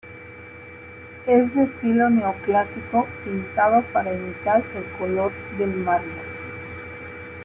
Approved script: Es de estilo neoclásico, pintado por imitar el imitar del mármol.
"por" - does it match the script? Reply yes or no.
no